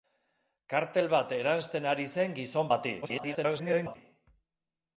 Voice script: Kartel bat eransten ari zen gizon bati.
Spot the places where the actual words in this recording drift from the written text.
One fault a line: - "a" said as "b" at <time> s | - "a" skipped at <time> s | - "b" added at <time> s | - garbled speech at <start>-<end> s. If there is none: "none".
- garbled speech at 3.0-4.0 s